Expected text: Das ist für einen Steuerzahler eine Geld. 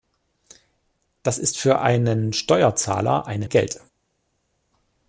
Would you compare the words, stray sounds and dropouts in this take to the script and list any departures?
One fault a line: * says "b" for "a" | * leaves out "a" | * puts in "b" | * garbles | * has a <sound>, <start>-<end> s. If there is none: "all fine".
all fine